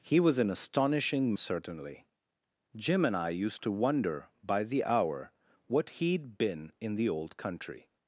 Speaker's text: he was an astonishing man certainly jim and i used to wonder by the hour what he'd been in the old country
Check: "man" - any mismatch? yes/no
yes